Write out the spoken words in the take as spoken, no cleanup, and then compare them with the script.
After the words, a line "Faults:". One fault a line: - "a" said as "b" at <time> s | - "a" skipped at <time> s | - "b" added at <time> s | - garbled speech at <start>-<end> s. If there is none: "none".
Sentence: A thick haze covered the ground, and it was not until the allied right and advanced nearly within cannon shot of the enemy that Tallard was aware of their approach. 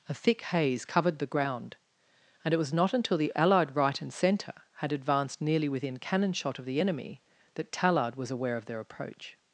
A thick haze covered the ground, and it was not until the allied right and centre had advanced nearly within cannon shot of the enemy that Tallard was aware of their approach.
Faults:
- "centre had" added at 4.1 s